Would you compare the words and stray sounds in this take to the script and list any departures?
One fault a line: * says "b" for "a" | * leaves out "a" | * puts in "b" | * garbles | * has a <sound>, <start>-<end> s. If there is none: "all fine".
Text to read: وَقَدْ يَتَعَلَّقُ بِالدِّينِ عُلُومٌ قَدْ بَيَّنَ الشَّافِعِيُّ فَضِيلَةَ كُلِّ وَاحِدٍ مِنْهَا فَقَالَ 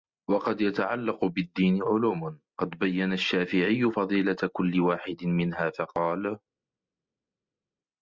all fine